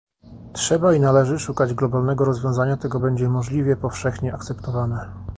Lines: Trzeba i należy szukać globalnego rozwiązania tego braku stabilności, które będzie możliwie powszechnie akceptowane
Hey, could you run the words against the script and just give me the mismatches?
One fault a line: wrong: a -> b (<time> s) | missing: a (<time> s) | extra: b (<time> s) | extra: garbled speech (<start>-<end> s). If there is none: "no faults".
missing: braku stabilności które (3.0 s)